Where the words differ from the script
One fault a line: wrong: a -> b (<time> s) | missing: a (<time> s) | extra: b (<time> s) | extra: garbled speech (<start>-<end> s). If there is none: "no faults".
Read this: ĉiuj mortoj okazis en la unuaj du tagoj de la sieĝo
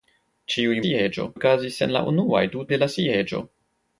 wrong: mortoj -> sieĝo (0.9 s)
missing: tagoj (2.7 s)